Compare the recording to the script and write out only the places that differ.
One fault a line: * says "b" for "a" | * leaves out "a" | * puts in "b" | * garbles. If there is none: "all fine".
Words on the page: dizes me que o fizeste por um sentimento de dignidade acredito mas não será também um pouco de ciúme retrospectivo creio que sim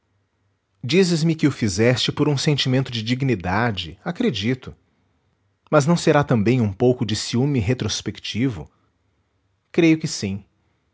all fine